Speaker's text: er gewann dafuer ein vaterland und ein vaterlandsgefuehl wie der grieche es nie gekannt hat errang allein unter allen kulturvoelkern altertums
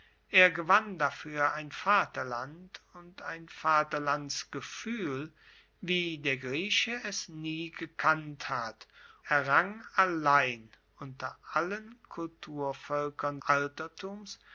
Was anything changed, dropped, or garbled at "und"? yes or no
no